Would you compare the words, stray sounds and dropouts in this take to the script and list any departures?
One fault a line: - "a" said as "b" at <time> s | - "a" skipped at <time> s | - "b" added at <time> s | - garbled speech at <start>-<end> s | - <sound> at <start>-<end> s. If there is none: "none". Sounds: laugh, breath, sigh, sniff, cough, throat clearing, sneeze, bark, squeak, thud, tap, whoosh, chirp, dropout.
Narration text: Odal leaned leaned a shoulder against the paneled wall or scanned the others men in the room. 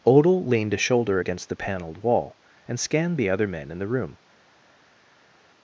- "leaned" skipped at 0.7 s
- "or" said as "and" at 2.7 s
- "others" said as "other" at 3.3 s